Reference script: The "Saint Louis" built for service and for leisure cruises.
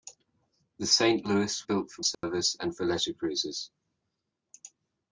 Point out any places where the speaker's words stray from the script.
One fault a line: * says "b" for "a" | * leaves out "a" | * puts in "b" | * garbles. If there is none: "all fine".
all fine